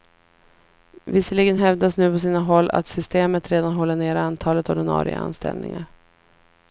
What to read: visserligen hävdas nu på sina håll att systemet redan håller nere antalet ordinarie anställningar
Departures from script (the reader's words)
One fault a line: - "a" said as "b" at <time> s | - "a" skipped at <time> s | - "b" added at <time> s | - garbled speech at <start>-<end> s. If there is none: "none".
none